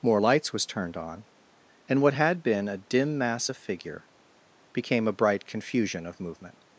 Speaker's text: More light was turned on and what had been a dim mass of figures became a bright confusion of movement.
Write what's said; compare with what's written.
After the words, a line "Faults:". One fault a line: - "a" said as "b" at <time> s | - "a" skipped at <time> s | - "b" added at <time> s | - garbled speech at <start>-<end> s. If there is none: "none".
More lights was turned on and what had been a dim mass of figure became a bright confusion of movement.
Faults:
- "light" said as "lights" at 0.2 s
- "figures" said as "figure" at 3.6 s